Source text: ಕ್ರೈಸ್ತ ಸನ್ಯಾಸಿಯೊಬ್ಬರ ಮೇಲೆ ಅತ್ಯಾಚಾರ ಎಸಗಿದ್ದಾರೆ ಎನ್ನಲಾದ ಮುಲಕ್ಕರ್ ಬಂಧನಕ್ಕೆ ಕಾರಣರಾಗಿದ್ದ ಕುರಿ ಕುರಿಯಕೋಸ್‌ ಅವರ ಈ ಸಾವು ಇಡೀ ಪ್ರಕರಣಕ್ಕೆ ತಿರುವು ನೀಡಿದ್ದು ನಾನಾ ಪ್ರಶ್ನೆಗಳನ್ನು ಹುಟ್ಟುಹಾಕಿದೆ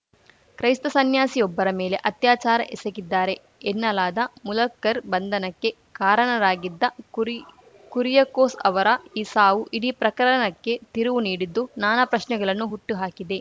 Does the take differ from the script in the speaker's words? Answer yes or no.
no